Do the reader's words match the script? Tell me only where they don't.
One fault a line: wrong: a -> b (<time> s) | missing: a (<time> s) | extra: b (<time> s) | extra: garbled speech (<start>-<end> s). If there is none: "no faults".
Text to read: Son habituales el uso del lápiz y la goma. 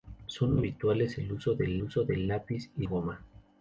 extra: uso del (1.8 s)
missing: la (2.9 s)